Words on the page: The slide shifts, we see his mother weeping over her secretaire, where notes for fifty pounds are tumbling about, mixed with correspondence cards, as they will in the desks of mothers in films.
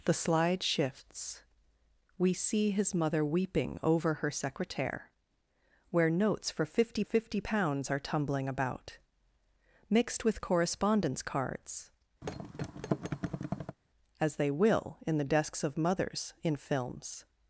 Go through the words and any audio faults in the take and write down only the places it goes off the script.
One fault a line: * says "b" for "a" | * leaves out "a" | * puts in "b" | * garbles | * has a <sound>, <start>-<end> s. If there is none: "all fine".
* puts in "fifty"
* has a thud, 12.2-13.8 s